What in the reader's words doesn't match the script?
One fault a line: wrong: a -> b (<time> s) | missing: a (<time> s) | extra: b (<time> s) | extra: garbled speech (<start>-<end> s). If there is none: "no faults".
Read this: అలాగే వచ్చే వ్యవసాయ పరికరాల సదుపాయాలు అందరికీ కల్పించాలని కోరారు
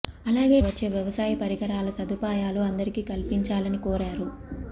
no faults